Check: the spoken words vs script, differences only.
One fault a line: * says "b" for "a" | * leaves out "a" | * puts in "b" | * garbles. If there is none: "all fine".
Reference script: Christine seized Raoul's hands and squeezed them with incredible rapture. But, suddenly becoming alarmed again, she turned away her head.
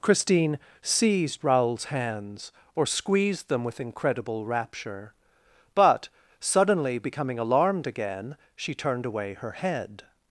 * says "or" for "and"